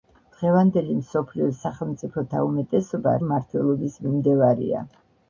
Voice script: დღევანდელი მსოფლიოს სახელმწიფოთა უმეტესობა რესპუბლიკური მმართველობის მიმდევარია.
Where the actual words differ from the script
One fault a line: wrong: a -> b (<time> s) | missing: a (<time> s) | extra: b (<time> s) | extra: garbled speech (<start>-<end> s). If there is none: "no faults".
missing: რესპუბლიკური (3.2 s)